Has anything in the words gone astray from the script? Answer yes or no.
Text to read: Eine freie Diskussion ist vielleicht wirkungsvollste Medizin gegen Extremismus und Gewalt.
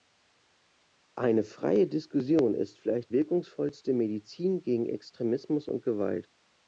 no